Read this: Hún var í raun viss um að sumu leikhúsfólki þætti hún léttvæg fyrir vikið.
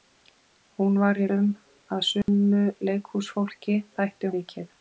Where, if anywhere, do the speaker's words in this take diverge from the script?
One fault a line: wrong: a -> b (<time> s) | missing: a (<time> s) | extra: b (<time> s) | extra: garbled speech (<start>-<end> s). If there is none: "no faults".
missing: raun viss (1.3 s)
missing: hún léttvæg fyrir (4.3 s)